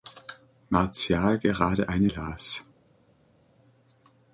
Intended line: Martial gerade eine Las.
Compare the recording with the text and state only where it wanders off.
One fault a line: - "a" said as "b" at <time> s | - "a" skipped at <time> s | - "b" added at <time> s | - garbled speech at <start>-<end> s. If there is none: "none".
none